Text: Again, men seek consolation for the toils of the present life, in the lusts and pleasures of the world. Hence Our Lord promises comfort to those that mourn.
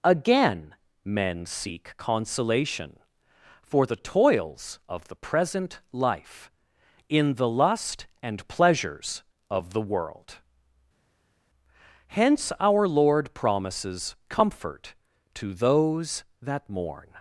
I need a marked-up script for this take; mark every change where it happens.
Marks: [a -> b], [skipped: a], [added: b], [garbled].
Again, men seek consolation for the toils of the present life, in the [lusts -> lust] and pleasures of the world. Hence Our Lord promises comfort to those that mourn.